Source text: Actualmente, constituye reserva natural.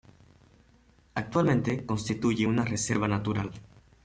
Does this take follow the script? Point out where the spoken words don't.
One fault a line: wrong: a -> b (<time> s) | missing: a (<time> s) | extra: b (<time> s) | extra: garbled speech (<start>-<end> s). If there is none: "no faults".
extra: una (2.4 s)